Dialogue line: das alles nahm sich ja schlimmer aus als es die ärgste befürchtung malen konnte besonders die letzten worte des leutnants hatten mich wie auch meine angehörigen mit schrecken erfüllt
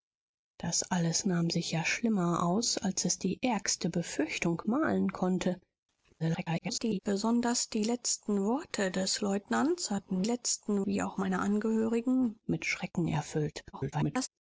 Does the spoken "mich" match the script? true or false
false